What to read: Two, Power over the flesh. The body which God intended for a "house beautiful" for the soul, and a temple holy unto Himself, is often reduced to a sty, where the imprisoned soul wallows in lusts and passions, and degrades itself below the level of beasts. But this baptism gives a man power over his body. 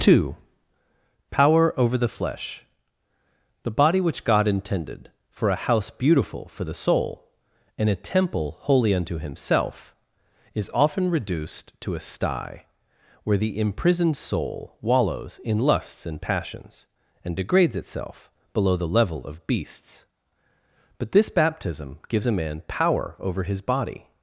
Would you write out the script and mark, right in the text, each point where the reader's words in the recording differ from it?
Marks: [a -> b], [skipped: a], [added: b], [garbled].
Two, Power over the flesh. The body which God intended for a "house beautiful" for the soul, and a temple holy unto Himself, is often reduced to a sty, where the imprisoned soul wallows in lusts and passions, and degrades itself below the level of beasts. But this baptism gives a man power over his body.